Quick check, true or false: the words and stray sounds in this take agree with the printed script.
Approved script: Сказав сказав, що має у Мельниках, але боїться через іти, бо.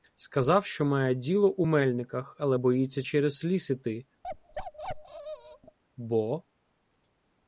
false